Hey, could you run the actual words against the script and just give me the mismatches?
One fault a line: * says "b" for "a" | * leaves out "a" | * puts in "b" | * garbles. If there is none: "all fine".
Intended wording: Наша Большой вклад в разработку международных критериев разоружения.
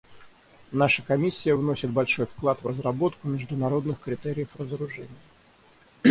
* puts in "Комиссия вносит"